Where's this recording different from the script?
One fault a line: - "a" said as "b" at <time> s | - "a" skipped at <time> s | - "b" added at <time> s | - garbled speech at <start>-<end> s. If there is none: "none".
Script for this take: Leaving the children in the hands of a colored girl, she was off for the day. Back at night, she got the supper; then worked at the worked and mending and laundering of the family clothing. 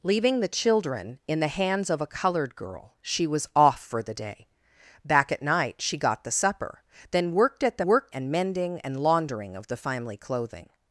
none